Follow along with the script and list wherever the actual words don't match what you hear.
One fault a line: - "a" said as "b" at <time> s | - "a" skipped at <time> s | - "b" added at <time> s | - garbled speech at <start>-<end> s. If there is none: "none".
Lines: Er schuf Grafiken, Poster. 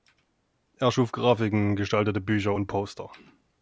- "gestaltete Bücher und" added at 1.8 s